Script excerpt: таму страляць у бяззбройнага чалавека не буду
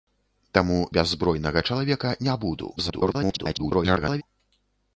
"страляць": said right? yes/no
no